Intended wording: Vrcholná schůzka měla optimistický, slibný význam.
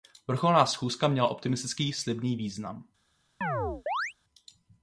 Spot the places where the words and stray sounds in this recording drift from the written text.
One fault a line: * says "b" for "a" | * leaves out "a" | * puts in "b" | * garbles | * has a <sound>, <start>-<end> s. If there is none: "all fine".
* has a chirp, 3.4-4.1 s